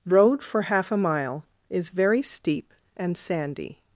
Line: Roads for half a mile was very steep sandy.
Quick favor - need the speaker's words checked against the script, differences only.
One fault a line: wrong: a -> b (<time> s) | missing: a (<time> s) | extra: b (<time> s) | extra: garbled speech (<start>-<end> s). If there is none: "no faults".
wrong: Roads -> Road (0.1 s)
wrong: was -> is (1.7 s)
extra: and (3.0 s)